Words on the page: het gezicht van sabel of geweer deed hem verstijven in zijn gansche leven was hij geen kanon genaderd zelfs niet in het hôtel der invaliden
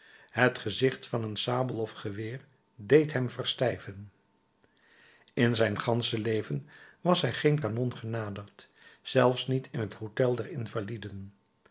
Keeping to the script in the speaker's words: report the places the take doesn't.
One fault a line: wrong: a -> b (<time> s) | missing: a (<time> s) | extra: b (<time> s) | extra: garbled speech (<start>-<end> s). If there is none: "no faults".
extra: een (1.2 s)